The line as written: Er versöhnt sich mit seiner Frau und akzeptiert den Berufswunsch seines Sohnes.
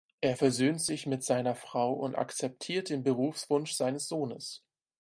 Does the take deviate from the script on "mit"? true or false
false